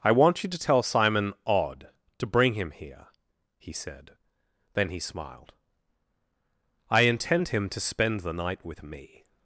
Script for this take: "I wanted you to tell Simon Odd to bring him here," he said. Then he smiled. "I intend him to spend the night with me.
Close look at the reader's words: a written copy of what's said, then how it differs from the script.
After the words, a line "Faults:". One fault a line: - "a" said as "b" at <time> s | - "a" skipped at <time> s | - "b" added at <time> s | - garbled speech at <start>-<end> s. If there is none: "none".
"I want you to tell Simon Odd to bring him here," he said. Then he smiled. "I intend him to spend the night with me.
Faults:
- "wanted" said as "want" at 0.1 s